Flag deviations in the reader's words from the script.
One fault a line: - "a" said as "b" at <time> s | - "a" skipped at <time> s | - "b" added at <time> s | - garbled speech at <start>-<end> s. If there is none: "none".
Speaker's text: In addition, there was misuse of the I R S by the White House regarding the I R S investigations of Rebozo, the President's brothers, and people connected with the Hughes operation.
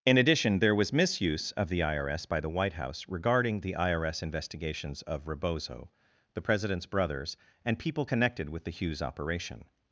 none